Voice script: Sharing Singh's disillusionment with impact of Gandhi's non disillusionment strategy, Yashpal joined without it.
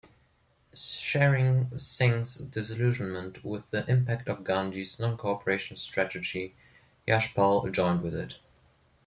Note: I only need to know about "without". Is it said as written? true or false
false